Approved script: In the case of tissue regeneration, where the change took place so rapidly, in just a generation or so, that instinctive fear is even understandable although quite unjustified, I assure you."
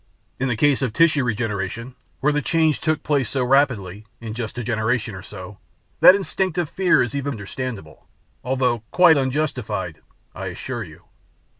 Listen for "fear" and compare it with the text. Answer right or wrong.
right